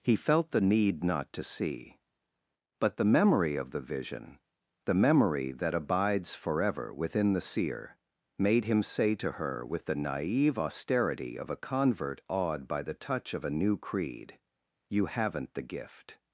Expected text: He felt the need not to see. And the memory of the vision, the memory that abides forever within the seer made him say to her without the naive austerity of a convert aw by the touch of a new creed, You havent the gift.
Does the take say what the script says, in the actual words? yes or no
no